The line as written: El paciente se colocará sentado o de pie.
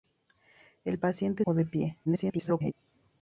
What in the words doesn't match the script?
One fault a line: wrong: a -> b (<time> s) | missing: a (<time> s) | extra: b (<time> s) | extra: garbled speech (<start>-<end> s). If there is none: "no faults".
missing: se colocará sentado (1.4 s)
extra: garbled speech (2.1-2.7 s)